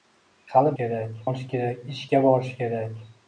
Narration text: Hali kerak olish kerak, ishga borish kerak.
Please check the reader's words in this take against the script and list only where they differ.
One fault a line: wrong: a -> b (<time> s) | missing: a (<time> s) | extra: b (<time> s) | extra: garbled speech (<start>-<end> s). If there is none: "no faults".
no faults